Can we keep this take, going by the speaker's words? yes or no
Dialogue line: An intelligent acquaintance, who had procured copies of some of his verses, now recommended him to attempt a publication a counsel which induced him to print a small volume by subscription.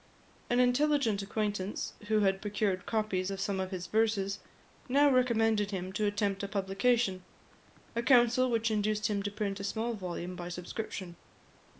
yes